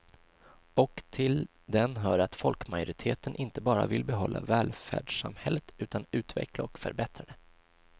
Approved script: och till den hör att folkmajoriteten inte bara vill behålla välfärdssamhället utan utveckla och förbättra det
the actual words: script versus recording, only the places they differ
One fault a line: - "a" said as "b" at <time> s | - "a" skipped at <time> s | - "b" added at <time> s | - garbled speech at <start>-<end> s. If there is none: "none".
none